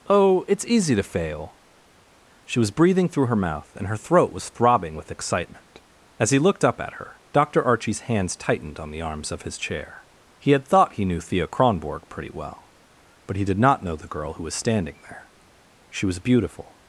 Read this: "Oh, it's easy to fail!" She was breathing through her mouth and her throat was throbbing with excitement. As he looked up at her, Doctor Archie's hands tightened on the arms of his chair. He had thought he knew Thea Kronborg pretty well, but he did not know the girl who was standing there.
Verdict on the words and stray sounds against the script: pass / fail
fail